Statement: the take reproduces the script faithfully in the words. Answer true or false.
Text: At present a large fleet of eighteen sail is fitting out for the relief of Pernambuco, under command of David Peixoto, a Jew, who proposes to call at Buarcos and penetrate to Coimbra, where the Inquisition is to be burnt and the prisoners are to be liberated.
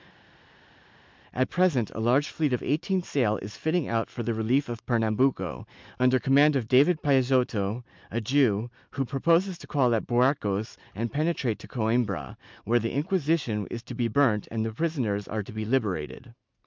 true